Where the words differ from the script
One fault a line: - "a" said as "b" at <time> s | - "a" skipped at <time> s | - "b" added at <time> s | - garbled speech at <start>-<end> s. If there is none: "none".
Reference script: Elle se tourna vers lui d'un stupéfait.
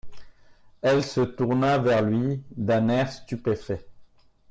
- "air" added at 2.9 s